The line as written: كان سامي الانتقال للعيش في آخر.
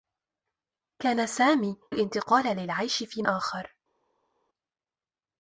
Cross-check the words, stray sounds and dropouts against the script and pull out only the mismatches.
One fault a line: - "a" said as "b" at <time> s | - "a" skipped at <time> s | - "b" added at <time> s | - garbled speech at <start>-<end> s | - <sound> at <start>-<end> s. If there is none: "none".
none